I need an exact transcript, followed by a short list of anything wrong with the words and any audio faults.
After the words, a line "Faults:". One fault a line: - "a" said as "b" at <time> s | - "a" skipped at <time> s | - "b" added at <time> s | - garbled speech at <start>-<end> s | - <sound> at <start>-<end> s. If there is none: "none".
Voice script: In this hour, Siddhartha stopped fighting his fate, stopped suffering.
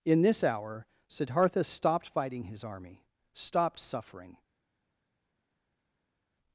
In this hour, Siddhartha stopped fighting his army, stopped suffering.
Faults:
- "fate" said as "army" at 2.6 s